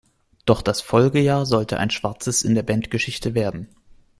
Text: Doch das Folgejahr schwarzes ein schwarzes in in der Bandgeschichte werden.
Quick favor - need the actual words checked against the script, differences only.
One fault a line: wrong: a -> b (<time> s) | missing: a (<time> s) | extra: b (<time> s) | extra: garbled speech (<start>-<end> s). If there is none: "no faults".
wrong: schwarzes -> sollte (1.4 s)
missing: in (2.5 s)